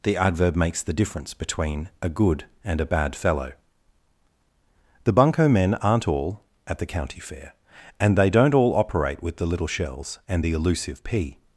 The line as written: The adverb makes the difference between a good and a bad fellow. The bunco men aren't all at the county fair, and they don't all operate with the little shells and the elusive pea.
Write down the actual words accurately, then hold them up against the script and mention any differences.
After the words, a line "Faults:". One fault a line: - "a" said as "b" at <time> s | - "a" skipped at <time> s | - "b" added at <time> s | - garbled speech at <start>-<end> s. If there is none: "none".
The adverb makes the difference between a good and a bad fellow. The bunco men aren't all at the county fair, and they don't all operate with the little shells and the elusive pea.
Faults:
none